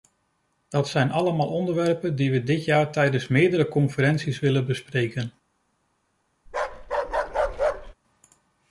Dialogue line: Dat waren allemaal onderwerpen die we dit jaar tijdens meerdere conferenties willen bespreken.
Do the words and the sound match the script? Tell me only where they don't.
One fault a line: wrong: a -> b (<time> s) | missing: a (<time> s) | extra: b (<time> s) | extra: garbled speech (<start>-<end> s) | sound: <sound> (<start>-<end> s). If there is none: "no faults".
wrong: waren -> zijn (0.9 s)
sound: bark (6.5-7.9 s)